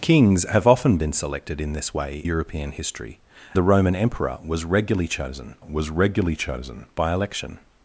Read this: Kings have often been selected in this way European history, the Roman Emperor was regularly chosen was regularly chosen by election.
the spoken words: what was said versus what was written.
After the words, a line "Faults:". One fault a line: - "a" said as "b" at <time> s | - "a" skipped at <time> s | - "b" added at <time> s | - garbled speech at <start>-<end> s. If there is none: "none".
Kings have often been selected in this way European history, the Roman Emperor was regularly chosen was regularly chosen by election.
Faults:
none